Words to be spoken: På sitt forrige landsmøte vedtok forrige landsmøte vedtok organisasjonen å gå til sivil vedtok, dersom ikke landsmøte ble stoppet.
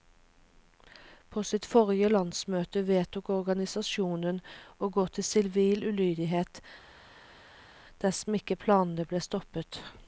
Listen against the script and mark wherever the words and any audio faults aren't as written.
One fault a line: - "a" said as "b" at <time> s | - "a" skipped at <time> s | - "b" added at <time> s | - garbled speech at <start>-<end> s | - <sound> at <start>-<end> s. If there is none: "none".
- "forrige landsmøte vedtok" skipped at 3.3 s
- "vedtok" said as "ulydighet" at 5.9 s
- "landsmøte" said as "planene" at 8.7 s